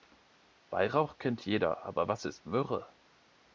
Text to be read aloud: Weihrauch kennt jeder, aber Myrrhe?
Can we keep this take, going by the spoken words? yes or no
no